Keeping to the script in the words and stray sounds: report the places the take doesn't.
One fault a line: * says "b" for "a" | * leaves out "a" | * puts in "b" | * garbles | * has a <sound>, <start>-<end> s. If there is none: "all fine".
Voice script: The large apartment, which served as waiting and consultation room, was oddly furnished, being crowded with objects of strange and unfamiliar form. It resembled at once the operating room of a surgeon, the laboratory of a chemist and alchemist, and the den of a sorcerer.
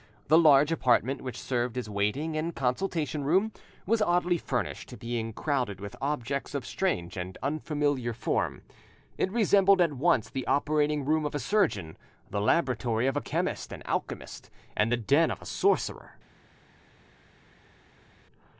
all fine